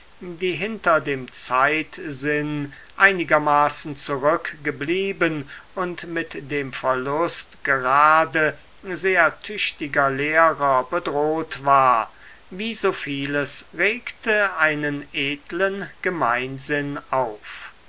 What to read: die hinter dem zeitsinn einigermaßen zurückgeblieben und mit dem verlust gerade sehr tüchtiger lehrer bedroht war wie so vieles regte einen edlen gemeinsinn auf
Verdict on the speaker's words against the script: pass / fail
pass